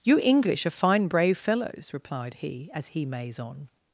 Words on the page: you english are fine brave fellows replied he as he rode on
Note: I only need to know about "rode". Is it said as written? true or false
false